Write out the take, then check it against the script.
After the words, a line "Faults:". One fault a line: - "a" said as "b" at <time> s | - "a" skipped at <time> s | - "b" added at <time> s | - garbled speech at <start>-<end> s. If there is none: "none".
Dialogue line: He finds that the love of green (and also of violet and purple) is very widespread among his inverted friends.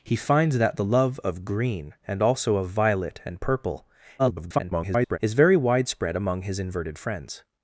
He finds that the love of green (and also of violet and purple) [garbled] is very widespread among his inverted friends.
Faults:
- garbled speech at 4.2-5.2 s